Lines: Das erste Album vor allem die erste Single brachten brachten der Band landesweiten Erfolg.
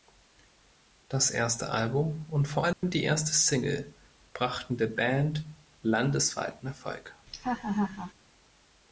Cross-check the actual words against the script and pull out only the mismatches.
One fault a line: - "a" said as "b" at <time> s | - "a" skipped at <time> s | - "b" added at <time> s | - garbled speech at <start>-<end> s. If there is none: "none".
- "und" added at 2.3 s
- "brachten" skipped at 4.8 s